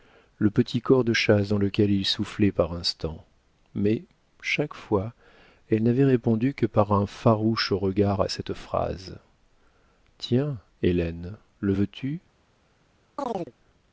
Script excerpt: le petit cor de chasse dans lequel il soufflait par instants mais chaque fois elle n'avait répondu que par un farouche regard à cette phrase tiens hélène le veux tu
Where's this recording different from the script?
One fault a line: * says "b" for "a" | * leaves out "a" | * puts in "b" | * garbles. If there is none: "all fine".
all fine